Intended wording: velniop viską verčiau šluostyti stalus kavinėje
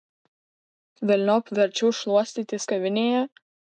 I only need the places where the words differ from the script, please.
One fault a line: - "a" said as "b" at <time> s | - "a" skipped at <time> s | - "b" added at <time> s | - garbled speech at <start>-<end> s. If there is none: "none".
- "viską" skipped at 1.5 s
- "stalus" skipped at 2.6 s